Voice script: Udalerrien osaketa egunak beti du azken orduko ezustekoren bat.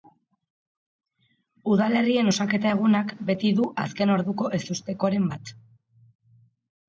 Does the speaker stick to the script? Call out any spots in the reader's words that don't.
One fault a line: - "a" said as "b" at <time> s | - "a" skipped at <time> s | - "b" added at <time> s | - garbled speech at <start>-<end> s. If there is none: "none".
none